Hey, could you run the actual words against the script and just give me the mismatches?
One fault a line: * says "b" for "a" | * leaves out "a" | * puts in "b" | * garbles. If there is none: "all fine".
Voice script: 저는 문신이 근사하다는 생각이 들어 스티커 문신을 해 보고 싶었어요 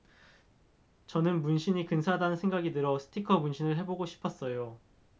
all fine